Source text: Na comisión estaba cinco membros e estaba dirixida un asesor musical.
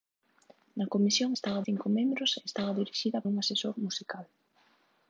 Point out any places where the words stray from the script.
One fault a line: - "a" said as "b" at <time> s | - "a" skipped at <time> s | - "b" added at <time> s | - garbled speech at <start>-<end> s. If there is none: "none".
none